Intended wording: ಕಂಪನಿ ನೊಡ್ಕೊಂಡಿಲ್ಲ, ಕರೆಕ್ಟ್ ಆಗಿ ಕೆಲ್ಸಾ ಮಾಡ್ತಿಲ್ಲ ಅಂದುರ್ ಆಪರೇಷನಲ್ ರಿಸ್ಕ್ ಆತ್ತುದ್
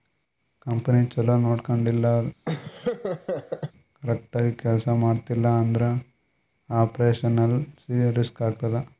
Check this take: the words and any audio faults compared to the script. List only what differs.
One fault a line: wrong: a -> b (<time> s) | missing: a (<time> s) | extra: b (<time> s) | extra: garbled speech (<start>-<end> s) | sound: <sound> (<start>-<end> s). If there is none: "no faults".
extra: ಛಲೋ (1.1 s)
sound: laugh (2.4-3.7 s)